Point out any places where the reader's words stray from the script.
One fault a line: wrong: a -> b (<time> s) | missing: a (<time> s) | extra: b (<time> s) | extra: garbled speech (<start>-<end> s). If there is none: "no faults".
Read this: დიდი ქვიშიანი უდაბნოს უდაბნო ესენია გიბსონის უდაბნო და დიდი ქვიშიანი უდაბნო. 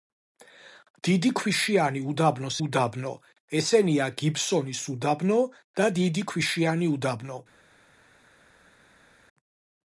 no faults